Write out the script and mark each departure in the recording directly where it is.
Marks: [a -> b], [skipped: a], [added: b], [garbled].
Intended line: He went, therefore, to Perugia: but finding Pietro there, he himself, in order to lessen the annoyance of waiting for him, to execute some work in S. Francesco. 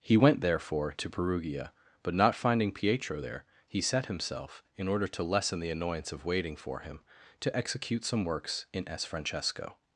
He went, therefore, to Perugia: but [added: not] finding Pietro there, he [added: set] himself, in order to lessen the annoyance of waiting for him, to execute some [work -> works] in S. Francesco.